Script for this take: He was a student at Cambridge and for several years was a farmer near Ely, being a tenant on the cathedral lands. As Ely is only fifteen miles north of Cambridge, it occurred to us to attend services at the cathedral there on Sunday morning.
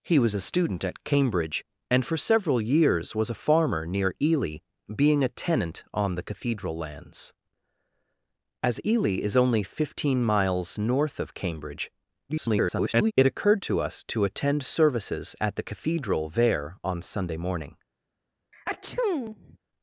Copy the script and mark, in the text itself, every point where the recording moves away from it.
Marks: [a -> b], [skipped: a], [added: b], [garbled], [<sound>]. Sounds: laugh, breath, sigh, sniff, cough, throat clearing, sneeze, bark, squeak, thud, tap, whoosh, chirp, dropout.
He was a student at Cambridge and for several years was a farmer near Ely, being a tenant on the cathedral lands. As Ely is only fifteen miles north of Cambridge, [garbled] it occurred to us to attend services at the cathedral there on Sunday morning. [sneeze]